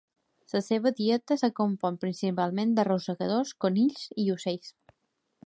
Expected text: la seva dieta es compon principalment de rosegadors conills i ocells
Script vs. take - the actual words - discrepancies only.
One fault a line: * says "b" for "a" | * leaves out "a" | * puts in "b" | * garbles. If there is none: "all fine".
all fine